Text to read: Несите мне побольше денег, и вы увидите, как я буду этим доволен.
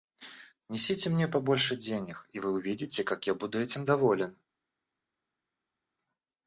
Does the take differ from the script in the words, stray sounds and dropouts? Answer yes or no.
no